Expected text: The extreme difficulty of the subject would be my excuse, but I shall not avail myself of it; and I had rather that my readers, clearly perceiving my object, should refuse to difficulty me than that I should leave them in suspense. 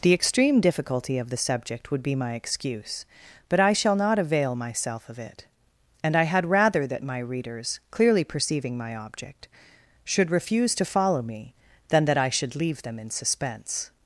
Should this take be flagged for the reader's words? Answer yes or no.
yes